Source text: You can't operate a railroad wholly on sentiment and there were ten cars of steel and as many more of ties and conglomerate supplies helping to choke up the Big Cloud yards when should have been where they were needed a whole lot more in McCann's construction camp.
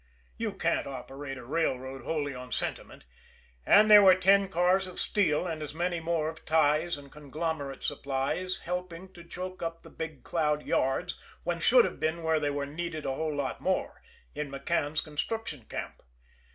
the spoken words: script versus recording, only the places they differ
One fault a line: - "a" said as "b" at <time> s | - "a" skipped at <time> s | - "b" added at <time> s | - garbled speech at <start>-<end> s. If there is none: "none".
none